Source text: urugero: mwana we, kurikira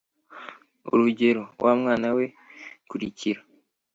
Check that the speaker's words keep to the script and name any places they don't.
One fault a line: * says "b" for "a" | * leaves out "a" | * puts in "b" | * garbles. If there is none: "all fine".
* puts in "wa"